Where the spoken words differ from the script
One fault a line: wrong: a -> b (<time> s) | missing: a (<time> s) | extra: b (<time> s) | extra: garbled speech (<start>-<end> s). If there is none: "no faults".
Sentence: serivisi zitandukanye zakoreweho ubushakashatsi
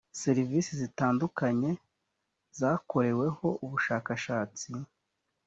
no faults